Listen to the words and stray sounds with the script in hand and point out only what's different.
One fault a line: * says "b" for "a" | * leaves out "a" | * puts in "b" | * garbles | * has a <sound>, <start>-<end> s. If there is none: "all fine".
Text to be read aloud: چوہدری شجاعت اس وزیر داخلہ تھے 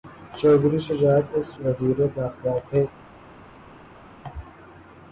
all fine